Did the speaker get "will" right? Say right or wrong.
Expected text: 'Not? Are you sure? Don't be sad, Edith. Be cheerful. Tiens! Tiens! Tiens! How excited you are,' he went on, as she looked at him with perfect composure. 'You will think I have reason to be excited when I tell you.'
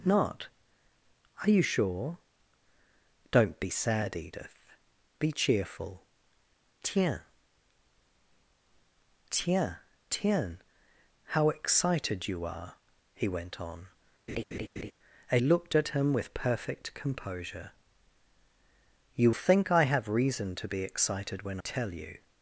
wrong